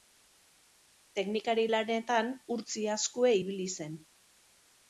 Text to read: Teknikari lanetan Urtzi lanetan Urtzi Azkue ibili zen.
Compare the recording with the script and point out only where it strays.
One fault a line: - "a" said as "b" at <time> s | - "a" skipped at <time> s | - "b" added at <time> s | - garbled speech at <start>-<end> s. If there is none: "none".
- "lanetan Urtzi" skipped at 2.9 s